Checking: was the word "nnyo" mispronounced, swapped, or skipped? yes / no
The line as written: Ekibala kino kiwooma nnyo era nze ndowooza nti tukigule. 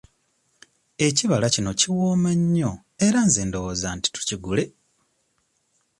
no